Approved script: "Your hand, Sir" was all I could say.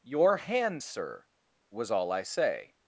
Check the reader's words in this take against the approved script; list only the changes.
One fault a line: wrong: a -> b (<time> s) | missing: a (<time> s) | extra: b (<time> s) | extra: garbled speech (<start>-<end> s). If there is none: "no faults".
missing: could (2.2 s)